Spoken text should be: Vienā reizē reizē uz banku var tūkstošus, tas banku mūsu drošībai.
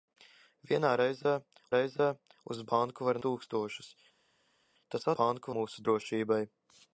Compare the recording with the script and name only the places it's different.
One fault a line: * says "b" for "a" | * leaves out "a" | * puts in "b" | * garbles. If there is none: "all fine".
all fine